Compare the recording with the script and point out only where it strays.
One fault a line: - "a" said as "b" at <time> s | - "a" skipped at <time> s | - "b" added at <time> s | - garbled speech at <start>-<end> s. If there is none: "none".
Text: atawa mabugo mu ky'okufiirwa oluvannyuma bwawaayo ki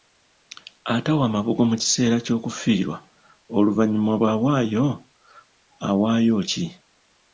- "kiseera" added at 1.8 s
- "awaayo" added at 5.9 s